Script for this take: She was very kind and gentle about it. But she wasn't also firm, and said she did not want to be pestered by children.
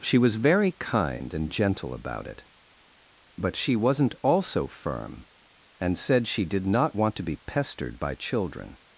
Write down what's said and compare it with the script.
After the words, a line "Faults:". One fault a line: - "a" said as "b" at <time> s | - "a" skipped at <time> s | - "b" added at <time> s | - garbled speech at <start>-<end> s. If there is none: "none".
She was very kind and gentle about it. But she wasn't also firm, and said she did not want to be pestered by children.
Faults:
none